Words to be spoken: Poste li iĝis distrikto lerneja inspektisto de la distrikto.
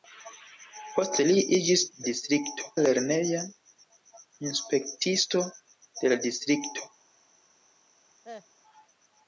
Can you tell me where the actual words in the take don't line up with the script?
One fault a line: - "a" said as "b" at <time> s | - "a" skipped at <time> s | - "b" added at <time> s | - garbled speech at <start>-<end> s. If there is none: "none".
none